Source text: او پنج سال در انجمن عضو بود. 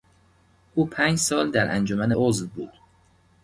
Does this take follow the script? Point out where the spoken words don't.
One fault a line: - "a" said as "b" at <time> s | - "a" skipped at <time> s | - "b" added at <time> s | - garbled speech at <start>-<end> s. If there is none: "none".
none